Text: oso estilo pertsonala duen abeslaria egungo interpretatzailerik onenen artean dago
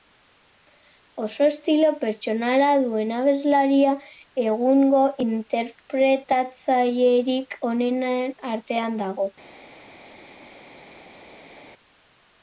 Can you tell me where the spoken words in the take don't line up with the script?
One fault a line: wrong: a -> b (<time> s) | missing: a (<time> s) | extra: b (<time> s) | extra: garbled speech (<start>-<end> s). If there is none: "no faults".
no faults